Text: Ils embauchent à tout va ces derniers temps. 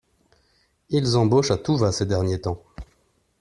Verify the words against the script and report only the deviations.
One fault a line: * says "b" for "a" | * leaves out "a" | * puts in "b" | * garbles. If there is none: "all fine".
all fine